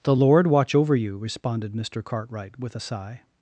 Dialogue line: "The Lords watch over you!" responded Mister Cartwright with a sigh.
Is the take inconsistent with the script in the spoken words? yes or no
yes